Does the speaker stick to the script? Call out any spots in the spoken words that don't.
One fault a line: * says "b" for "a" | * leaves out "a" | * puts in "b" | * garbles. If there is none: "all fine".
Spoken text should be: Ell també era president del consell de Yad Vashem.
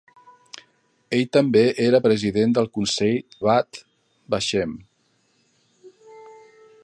* leaves out "de"